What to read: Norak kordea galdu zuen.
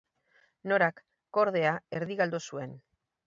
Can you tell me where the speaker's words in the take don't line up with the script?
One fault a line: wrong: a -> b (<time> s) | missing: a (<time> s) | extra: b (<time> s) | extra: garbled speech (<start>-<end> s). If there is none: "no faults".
extra: erdi (2.0 s)